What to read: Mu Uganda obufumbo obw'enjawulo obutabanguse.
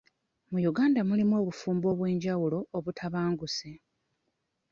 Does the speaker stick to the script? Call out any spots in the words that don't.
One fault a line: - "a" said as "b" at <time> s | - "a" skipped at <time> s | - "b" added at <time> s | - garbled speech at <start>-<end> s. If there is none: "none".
- "mulimu" added at 1.1 s